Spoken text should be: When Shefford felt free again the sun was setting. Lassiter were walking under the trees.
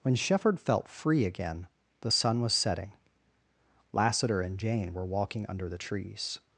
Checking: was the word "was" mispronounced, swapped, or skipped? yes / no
no